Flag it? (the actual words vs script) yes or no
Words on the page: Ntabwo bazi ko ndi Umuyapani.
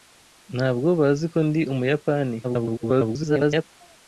yes